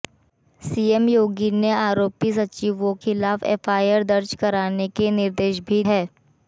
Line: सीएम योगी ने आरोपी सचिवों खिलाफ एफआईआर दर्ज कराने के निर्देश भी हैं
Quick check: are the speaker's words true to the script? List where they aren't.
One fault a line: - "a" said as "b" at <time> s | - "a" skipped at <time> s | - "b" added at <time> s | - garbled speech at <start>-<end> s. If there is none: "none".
none